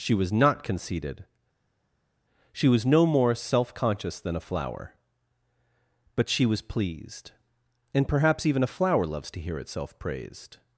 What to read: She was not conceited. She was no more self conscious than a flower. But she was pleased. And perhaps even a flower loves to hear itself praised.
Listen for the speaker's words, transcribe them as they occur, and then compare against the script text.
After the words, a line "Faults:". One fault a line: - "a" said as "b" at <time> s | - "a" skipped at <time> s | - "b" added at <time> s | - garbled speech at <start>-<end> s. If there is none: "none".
She was not conceited. She was no more self conscious than a flower. But she was pleased. And perhaps even a flower loves to hear itself praised.
Faults:
none